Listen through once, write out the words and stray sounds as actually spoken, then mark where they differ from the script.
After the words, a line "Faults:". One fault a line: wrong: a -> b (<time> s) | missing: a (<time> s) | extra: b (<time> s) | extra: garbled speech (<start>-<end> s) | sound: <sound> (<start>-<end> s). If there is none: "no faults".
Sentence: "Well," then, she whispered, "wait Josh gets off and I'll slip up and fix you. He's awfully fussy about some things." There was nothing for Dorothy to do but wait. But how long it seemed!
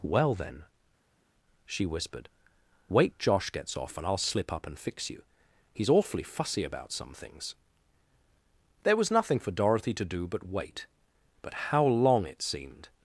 "Well," then, she whispered, "wait Josh gets off and I'll slip up and fix you. He's awfully fussy about some things." There was nothing for Dorothy to do but wait. But how long it seemed!
Faults:
no faults